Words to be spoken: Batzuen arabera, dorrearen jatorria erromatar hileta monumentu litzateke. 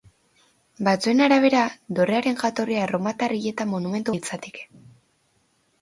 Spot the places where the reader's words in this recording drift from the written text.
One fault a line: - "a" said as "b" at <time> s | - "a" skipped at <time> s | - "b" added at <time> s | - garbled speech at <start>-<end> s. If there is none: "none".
none